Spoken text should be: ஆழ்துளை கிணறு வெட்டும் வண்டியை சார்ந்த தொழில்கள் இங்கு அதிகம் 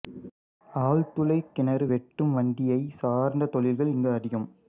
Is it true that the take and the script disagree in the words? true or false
false